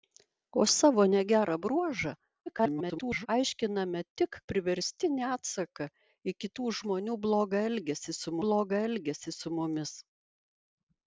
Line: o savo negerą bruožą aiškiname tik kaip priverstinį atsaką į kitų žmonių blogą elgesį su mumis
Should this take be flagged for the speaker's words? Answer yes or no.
yes